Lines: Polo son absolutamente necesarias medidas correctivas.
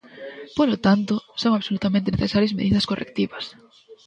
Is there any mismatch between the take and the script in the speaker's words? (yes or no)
yes